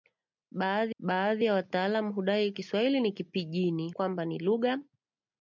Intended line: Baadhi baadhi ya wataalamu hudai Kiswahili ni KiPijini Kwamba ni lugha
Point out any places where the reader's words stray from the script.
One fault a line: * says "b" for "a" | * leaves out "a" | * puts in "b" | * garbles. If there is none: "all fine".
all fine